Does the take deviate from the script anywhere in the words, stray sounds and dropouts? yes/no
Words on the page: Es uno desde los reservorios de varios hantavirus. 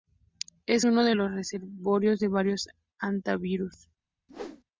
yes